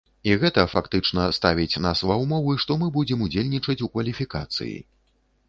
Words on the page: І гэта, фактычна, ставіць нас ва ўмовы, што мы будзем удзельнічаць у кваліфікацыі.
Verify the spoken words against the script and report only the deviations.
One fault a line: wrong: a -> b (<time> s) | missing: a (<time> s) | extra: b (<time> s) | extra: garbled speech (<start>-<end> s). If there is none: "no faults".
no faults